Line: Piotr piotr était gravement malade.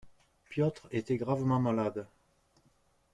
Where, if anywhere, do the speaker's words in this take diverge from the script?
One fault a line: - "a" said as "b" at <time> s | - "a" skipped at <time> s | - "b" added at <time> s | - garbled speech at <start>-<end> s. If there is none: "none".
- "piotr" skipped at 0.9 s